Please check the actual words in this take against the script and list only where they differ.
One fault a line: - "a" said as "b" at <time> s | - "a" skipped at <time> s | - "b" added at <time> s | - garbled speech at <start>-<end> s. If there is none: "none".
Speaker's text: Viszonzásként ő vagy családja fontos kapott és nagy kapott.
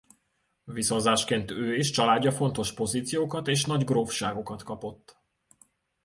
- "vagy" said as "és" at 1.8 s
- "kapott" said as "pozíciókat" at 2.7 s
- "grófságokat" added at 3.8 s